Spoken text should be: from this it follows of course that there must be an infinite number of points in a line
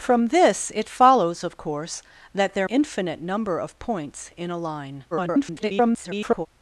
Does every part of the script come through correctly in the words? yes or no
no